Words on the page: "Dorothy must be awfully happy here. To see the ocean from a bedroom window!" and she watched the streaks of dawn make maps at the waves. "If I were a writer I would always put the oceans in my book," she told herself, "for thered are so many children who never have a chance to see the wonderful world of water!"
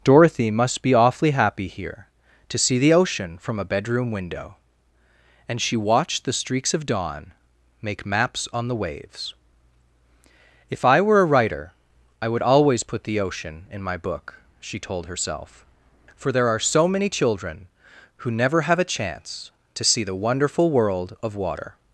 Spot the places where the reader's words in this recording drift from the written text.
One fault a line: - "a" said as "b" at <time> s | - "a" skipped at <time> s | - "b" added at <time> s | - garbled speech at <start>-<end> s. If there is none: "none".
- "at" said as "on" at 8.5 s
- "oceans" said as "ocean" at 13.2 s
- "thered" said as "there" at 16.3 s